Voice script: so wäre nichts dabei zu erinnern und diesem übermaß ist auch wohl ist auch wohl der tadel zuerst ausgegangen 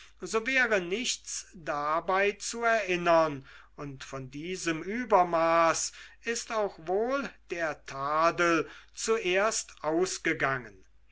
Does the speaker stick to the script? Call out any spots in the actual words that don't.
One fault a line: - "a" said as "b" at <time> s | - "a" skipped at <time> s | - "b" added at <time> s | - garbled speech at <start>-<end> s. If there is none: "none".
- "von" added at 4.0 s
- "ist auch wohl" skipped at 7.3 s